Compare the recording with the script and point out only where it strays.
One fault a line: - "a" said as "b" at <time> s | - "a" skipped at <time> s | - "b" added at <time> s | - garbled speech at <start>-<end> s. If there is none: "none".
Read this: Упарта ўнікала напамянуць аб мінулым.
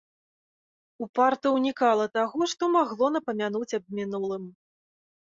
- "таго што магло" added at 2.2 s